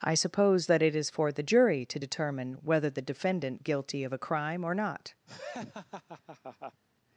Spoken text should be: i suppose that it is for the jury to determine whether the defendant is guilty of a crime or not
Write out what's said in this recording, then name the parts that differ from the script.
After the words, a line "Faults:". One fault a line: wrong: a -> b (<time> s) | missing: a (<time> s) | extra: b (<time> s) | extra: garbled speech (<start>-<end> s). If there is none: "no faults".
i suppose that it is for the jury to determine whether the defendant guilty of a crime or not
Faults:
missing: is (3.6 s)